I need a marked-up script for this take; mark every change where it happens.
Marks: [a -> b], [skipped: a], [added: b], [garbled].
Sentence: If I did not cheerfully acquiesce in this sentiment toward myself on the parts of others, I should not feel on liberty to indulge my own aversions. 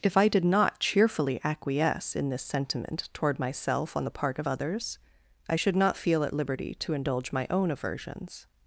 If I did not cheerfully acquiesce in this sentiment toward myself on the [parts -> part] of others, I should not feel [on -> at] liberty to indulge my own aversions.